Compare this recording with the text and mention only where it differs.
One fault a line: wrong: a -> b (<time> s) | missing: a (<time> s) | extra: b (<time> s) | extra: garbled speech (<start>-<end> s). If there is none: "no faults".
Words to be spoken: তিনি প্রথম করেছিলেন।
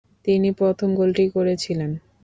extra: গোলটি (0.9 s)